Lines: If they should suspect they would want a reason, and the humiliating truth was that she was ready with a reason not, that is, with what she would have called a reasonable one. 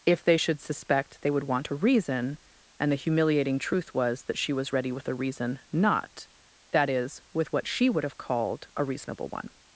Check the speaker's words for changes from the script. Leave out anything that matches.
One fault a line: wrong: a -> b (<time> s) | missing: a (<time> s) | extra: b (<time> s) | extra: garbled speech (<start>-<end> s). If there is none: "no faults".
no faults